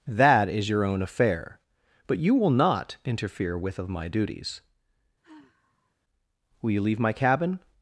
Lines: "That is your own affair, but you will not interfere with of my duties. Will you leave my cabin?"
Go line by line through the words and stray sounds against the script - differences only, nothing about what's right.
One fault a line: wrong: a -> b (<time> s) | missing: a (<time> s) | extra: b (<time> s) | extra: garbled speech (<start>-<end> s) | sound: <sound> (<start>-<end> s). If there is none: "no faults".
sound: sigh (5.2-6.0 s)